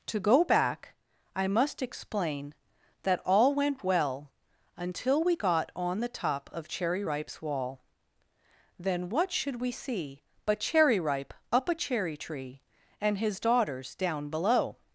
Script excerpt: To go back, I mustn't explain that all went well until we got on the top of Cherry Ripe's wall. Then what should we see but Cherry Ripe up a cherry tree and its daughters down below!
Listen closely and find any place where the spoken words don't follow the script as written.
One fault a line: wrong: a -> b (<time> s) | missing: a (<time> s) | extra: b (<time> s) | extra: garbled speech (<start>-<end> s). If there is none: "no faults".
wrong: mustn't -> must (1.5 s)
wrong: its -> his (13.2 s)